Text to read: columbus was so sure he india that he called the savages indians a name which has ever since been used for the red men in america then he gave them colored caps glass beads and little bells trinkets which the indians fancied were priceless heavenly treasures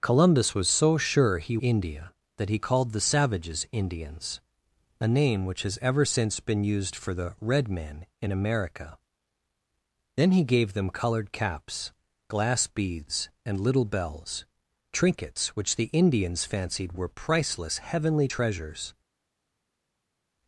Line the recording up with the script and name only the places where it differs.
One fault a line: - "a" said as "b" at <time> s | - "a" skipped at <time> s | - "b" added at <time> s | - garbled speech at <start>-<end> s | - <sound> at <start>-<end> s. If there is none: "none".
none